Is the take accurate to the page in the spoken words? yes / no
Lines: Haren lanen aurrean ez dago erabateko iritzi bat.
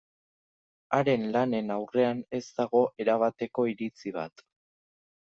yes